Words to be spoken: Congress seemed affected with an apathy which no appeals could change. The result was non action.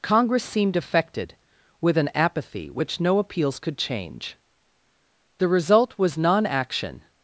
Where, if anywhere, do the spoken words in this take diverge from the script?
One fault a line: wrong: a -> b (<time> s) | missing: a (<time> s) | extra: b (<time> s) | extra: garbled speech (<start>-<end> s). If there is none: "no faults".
no faults